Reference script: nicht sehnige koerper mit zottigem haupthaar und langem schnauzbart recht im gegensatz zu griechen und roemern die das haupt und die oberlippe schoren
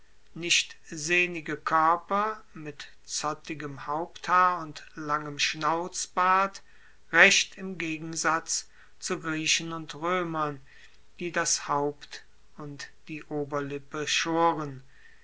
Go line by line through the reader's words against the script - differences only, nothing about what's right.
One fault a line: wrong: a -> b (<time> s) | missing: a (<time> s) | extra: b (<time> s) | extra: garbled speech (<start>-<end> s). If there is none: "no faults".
no faults